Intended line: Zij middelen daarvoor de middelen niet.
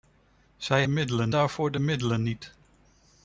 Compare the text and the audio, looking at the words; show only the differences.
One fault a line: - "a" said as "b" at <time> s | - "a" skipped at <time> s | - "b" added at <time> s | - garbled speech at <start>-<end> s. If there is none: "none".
none